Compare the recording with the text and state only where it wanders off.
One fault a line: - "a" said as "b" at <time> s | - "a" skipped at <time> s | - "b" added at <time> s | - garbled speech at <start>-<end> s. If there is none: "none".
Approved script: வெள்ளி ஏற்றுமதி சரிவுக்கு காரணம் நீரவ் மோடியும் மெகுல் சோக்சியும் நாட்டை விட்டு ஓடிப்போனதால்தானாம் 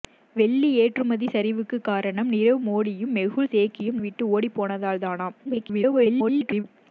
- "நாட்டை" skipped at 4.0 s
- garbled speech at 5.4-6.6 s